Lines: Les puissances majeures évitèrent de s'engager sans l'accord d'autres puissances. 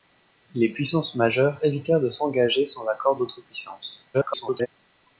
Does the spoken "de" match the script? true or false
true